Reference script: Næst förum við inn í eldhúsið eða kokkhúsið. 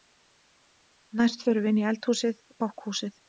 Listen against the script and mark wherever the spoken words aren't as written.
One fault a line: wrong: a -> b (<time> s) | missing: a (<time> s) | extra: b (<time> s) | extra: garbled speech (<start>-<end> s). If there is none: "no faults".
missing: eða (2.4 s)